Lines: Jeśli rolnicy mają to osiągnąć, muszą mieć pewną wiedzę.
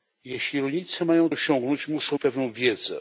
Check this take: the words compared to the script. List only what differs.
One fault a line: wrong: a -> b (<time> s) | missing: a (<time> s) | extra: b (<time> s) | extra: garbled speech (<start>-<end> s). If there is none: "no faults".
missing: to (1.3 s)
missing: mieć (2.2 s)